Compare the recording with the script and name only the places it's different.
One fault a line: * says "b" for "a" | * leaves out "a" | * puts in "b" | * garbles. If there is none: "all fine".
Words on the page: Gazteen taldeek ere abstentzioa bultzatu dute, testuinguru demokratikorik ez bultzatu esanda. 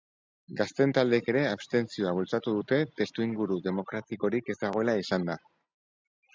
* says "dagoela" for "bultzatu"